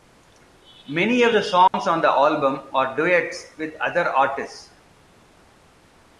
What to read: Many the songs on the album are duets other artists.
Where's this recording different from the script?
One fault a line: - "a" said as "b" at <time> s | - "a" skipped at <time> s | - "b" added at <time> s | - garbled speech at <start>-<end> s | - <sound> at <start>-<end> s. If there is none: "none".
- "of" added at 1.2 s
- dropout at 1.7-1.7 s
- "with" added at 3.6 s